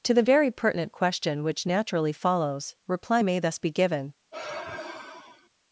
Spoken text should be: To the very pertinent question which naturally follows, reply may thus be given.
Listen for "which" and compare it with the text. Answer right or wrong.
right